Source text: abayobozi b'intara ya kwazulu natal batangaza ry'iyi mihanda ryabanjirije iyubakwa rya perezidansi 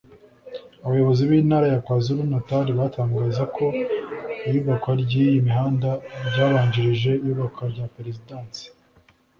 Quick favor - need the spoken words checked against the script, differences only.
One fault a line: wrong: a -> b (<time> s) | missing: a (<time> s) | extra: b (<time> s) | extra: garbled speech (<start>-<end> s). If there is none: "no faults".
extra: ko iyubakwa (3.5 s)